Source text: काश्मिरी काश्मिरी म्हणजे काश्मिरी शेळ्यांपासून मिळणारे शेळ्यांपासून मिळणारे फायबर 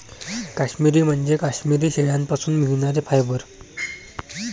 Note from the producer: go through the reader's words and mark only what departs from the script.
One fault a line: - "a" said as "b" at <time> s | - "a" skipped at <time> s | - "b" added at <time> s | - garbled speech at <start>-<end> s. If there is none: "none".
- "काश्मिरी" skipped at 1.0 s
- "शेळ्यांपासून मिळणारे" skipped at 3.0 s